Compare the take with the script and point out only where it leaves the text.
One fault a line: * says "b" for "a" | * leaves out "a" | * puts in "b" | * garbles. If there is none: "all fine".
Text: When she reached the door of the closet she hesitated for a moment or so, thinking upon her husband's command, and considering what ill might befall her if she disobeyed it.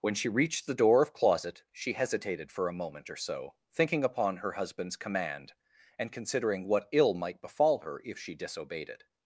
* leaves out "the"